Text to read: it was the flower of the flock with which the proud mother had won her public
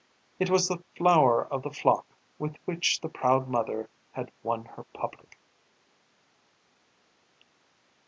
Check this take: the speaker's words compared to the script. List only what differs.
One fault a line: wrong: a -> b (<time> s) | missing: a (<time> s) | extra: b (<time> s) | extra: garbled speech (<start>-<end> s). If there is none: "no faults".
no faults